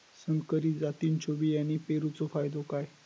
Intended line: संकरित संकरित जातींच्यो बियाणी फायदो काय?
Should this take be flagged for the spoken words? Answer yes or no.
yes